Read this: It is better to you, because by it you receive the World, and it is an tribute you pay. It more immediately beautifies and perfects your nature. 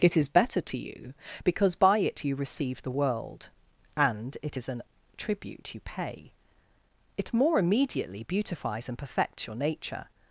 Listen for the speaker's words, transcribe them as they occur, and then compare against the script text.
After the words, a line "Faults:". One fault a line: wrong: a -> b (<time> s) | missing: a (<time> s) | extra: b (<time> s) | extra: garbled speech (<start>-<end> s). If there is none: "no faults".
It is better to you, because by it you receive the World, and it is an tribute you pay. It more immediately beautifies and perfects your nature.
Faults:
no faults